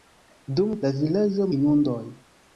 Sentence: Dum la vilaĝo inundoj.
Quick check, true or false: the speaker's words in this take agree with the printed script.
true